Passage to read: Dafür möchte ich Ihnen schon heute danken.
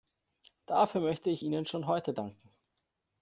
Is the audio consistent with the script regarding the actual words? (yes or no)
yes